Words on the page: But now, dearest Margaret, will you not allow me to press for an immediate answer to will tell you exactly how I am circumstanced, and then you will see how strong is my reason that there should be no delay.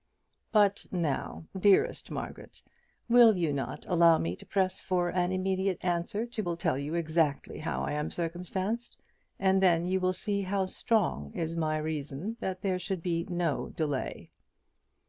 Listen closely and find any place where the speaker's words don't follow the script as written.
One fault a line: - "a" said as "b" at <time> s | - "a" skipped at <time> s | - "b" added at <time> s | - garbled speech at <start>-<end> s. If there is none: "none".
none